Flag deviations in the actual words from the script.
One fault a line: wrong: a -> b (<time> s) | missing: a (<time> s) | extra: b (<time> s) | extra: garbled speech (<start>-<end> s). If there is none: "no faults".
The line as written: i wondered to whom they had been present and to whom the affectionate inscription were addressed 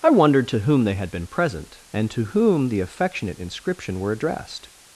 no faults